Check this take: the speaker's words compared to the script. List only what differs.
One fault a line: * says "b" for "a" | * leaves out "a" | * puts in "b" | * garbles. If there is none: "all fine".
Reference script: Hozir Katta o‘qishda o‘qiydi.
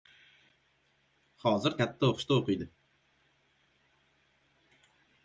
all fine